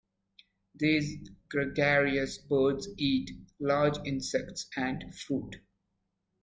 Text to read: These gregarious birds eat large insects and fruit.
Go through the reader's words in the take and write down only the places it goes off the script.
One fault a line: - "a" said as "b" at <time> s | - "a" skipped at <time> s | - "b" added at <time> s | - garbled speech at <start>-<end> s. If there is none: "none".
none